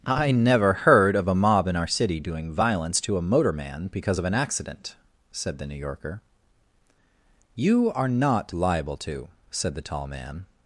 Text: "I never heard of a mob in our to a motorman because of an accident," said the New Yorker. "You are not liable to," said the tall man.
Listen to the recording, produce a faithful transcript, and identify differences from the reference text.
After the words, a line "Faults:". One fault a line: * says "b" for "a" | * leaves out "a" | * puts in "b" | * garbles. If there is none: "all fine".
"I never heard of a mob in our city doing violence to a motorman because of an accident," said the New Yorker. "You are not liable to," said the tall man.
Faults:
* puts in "city doing violence"